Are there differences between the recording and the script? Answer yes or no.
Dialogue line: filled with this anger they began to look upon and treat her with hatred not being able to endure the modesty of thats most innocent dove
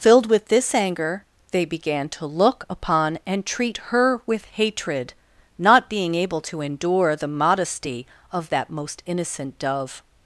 yes